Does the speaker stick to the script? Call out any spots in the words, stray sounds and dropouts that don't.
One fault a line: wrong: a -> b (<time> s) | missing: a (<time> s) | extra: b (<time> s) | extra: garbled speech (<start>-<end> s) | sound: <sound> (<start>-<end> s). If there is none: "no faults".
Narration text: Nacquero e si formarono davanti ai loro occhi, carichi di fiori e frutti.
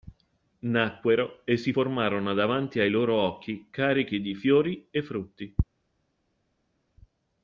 no faults